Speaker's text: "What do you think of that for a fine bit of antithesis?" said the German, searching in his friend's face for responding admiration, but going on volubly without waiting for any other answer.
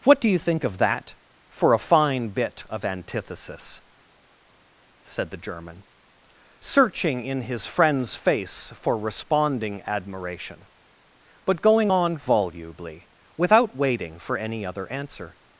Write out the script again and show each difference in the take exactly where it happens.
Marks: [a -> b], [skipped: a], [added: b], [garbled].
"What do you think of that for a fine bit of antithesis?" said the German, searching in his friend's face for responding admiration, but going on volubly without waiting for any other answer.